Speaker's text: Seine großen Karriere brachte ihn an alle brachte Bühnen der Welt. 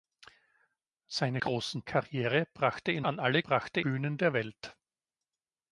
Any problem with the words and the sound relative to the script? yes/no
no